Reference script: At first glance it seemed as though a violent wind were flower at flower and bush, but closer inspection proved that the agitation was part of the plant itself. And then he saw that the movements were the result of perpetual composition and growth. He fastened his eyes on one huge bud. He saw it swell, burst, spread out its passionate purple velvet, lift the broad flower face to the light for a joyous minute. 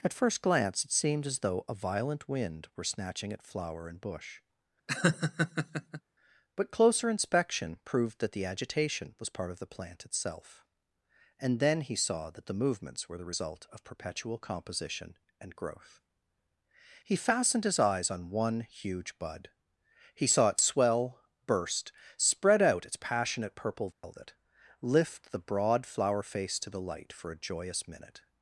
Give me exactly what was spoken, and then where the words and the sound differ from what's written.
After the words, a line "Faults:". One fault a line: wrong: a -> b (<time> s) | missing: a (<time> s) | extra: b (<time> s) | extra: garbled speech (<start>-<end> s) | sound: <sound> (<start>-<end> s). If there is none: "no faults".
At first glance it seemed as though a violent wind were snatching at flower and bush, but closer inspection proved that the agitation was part of the plant itself. And then he saw that the movements were the result of perpetual composition and growth. He fastened his eyes on one huge bud. He saw it swell, burst, spread out its passionate purple velvet, lift the broad flower face to the light for a joyous minute.
Faults:
wrong: flower -> snatching (2.8 s)
sound: laugh (4.9-6.0 s)
sound: dropout (23.9-24.0 s)